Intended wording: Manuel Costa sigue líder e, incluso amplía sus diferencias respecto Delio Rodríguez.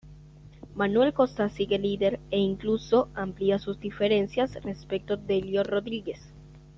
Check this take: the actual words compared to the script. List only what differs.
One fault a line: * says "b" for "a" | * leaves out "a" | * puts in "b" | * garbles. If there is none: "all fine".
all fine